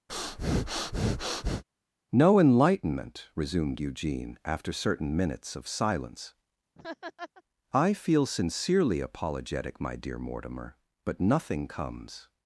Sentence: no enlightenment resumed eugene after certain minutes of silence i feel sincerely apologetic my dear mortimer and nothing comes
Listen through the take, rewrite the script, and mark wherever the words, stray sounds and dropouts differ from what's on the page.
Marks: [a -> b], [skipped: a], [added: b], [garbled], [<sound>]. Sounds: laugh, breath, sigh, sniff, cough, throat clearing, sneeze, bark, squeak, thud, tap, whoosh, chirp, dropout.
[breath] no enlightenment resumed eugene after certain minutes of silence [laugh] i feel sincerely apologetic my dear mortimer [and -> but] nothing comes